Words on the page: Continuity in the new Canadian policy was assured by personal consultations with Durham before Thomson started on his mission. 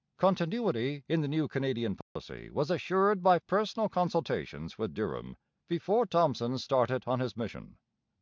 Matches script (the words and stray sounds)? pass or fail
fail